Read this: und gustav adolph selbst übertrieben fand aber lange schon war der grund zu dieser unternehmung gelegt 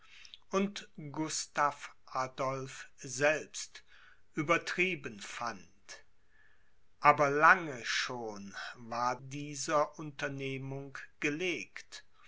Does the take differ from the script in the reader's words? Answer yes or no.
yes